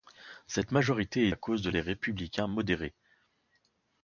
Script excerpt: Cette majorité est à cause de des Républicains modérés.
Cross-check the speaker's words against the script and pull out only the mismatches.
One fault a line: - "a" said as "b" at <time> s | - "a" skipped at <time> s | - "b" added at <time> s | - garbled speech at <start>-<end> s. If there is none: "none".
none